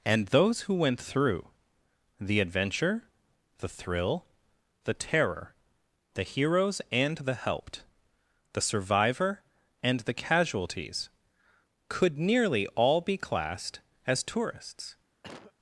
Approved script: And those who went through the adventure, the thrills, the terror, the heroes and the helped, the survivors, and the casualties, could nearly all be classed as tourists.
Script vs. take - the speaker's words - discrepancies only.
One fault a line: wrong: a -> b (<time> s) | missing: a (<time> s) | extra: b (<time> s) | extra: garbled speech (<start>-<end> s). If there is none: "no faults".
wrong: thrills -> thrill (3.7 s)
wrong: survivors -> survivor (8.6 s)